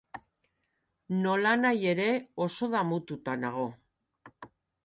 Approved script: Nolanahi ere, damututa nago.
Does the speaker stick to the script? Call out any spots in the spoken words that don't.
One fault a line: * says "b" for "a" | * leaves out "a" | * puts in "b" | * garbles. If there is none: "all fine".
* puts in "oso"